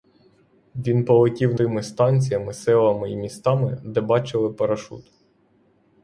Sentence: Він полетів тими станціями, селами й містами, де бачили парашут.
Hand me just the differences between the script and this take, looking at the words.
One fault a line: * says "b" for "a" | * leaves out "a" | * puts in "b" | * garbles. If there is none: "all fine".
all fine